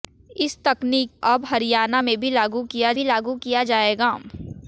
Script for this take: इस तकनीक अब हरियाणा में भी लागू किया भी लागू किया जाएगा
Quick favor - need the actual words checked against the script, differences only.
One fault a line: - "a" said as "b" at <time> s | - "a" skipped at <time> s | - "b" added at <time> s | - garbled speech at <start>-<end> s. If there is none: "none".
none